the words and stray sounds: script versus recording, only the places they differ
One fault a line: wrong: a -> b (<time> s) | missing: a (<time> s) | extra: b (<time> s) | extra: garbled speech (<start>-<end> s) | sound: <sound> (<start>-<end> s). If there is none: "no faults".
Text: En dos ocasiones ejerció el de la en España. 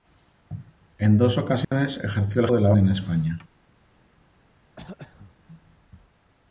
sound: dropout (1.6-1.7 s)
sound: throat clearing (4.8-5.3 s)